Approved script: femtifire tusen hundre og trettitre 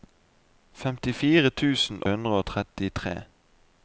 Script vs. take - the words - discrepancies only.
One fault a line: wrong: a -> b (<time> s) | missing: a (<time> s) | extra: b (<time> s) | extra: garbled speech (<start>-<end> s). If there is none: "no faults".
no faults